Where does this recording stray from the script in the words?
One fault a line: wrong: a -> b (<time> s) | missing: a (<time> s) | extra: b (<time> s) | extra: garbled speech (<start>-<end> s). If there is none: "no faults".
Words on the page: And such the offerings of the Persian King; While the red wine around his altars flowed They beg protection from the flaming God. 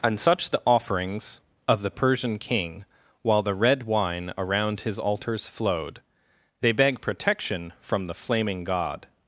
no faults